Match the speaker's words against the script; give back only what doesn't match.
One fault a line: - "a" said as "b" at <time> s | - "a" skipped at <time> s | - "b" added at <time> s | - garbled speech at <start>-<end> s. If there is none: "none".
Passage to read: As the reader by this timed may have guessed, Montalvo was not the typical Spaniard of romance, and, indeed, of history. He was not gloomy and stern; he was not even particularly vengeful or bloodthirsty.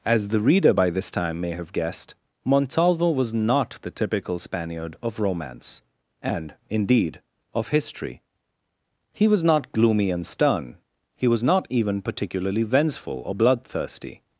- "timed" said as "time" at 1.1 s